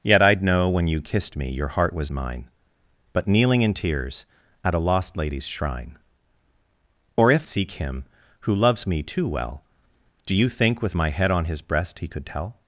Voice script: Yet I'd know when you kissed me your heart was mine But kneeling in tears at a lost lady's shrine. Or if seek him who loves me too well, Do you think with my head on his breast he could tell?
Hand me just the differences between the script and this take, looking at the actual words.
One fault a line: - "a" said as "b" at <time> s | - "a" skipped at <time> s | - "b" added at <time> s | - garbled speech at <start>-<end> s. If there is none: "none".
none